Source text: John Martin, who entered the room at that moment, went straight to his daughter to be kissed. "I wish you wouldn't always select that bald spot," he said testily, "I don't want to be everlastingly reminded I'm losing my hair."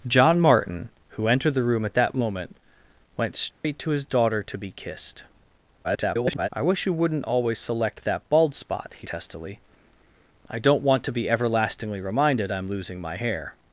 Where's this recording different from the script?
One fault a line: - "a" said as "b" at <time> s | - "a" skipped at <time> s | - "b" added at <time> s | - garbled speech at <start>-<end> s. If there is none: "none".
- garbled speech at 5.8-6.5 s
- "said" skipped at 9.1 s